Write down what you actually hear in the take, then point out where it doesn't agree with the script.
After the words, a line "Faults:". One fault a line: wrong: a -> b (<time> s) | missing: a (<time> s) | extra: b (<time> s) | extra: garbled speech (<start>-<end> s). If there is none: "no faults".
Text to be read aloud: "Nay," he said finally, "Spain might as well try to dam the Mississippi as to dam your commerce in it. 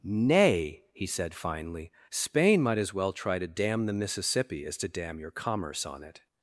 "Nay," he said finally, "Spain might as well try to dam the Mississippi as to dam your commerce on it.
Faults:
wrong: in -> on (5.8 s)